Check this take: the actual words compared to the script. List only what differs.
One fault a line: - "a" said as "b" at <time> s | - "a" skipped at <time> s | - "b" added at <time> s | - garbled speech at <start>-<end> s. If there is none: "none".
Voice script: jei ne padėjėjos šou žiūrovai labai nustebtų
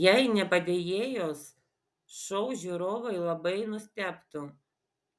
none